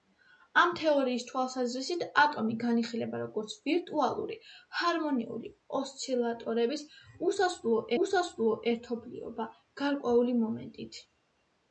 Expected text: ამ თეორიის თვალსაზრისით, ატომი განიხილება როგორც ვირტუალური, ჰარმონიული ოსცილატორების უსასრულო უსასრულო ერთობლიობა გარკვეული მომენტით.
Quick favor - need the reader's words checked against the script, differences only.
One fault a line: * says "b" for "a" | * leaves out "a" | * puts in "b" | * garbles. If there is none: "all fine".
all fine